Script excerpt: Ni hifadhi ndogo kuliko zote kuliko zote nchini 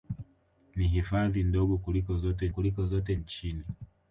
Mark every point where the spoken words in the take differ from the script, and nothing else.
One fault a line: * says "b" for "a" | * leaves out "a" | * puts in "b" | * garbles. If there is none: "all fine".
all fine